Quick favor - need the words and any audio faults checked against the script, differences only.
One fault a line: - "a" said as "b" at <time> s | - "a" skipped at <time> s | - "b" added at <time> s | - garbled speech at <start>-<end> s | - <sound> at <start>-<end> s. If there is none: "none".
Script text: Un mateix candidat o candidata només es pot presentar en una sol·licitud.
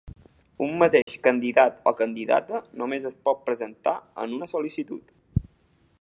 - dropout at 1.0-1.1 s